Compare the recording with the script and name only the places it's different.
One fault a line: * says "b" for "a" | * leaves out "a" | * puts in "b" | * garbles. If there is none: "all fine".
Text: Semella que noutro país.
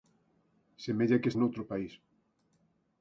all fine